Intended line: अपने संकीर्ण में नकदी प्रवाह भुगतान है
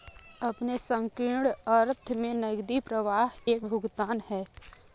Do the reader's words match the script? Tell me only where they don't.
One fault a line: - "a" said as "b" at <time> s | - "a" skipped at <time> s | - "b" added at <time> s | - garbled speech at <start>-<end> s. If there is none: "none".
- "अर्थ" added at 1.7 s
- "एक" added at 3.5 s